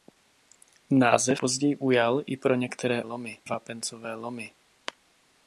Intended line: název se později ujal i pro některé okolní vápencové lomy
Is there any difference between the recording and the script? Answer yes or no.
yes